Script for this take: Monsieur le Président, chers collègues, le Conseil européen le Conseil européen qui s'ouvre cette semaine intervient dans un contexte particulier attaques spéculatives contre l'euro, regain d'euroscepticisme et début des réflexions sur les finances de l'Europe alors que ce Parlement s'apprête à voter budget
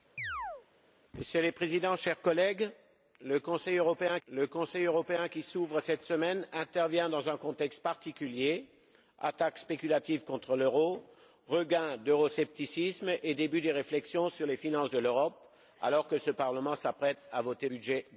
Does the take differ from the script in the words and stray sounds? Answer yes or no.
yes